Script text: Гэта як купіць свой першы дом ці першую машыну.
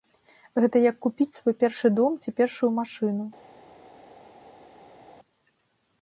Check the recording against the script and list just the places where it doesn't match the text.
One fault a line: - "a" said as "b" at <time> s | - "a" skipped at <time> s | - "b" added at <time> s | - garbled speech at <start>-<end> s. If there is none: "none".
none